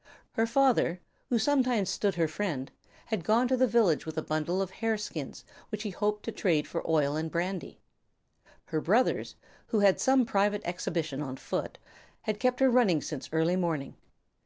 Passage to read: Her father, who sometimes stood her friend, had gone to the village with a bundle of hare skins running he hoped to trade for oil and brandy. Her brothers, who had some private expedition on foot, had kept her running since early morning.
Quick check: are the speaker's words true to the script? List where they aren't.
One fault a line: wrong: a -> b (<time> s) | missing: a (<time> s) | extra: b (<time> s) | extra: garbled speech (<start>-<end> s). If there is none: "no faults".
wrong: running -> which (5.7 s)